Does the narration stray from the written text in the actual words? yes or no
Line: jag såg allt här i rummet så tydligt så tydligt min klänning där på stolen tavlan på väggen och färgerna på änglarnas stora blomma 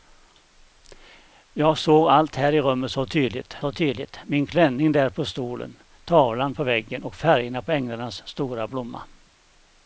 no